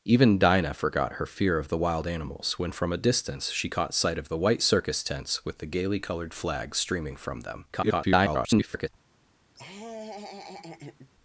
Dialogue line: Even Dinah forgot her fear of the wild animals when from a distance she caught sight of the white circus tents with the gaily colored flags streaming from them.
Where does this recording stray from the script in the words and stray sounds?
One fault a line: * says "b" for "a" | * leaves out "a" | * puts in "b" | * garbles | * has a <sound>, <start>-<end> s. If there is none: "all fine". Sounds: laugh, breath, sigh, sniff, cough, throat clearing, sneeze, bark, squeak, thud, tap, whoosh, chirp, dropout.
* garbles
* has a laugh, 9.5-11.1 s